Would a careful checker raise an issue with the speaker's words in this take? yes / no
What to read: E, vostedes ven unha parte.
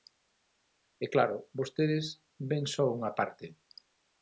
yes